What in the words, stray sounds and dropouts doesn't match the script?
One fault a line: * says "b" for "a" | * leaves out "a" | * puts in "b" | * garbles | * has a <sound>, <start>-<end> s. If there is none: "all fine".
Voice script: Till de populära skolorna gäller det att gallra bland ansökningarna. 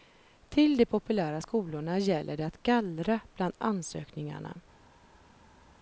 all fine